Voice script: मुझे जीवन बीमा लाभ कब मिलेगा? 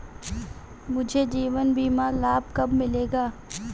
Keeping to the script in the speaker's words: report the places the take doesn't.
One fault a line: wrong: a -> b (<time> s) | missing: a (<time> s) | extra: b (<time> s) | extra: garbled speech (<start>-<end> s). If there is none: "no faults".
no faults